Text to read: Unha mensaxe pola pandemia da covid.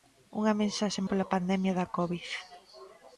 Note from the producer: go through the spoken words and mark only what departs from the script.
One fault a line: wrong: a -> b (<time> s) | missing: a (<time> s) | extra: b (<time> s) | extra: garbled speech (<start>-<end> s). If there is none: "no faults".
no faults